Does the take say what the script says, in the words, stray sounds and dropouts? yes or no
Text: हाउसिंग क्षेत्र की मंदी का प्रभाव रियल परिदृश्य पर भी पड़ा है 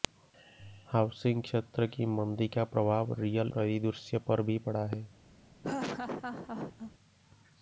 no